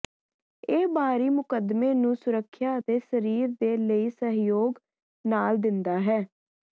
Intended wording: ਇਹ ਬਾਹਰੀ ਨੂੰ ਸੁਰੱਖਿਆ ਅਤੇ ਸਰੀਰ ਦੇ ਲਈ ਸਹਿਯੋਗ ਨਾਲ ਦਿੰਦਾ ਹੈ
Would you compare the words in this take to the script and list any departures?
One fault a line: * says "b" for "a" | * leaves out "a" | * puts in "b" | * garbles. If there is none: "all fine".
* puts in "ਮੁਕੱਦਮੇ"